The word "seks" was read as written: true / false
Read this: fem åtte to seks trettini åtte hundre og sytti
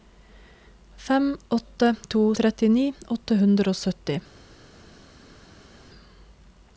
false